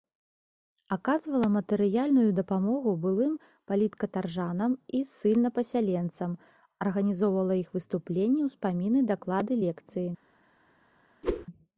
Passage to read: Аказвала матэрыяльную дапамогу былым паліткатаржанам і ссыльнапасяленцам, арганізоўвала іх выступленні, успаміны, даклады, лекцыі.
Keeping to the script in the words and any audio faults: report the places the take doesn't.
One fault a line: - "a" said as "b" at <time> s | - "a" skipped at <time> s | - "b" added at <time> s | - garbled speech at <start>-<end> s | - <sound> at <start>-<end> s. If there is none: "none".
- whoosh at 11.2-11.5 s